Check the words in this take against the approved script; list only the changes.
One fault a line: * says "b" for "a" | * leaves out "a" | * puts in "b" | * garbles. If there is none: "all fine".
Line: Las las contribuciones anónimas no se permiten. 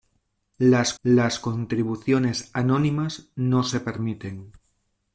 all fine